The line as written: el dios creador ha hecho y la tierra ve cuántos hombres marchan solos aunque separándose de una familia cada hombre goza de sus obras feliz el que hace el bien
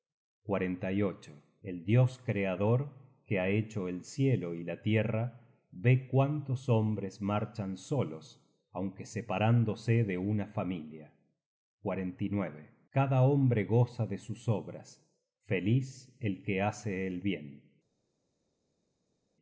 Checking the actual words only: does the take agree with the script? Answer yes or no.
no